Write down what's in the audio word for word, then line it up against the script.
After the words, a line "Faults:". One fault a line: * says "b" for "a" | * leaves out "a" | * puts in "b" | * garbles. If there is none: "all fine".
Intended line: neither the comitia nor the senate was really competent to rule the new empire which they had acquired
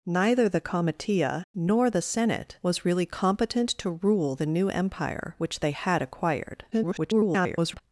neither the comitia nor the senate was really competent to rule the new empire which they had acquired [garbled]
Faults:
* garbles